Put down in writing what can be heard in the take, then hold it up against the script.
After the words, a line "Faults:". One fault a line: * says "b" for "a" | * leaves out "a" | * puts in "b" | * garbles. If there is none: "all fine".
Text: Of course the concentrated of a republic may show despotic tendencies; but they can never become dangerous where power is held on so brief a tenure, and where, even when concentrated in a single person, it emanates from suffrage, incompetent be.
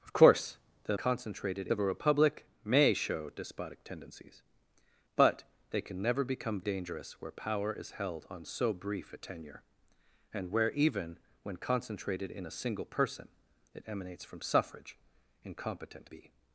Of course the concentrated of a republic may show despotic tendencies; but they can never become dangerous where power is held on so brief a tenure, and where, even when concentrated in a single person, it emanates from suffrage, incompetent be.
Faults:
all fine